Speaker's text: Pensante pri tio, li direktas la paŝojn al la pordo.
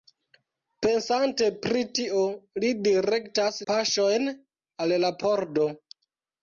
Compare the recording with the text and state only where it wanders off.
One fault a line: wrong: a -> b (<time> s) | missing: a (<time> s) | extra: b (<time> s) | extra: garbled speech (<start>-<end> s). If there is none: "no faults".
missing: la (3.6 s)